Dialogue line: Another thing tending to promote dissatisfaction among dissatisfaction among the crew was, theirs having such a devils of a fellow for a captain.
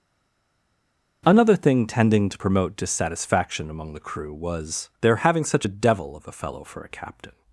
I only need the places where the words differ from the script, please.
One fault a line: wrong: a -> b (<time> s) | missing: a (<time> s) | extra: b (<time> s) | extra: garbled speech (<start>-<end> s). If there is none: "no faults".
missing: dissatisfaction among (3.9 s)
wrong: theirs -> their (5.0 s)
wrong: devils -> devil (5.7 s)